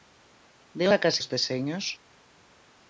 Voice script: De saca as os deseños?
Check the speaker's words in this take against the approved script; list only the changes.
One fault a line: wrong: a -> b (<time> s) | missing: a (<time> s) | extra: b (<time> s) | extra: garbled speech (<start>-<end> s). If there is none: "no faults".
no faults